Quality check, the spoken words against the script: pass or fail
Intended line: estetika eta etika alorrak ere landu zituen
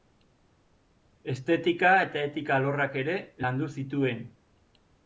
pass